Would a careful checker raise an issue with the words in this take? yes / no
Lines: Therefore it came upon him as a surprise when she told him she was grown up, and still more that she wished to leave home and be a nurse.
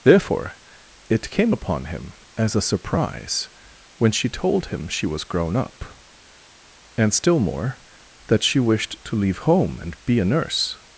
no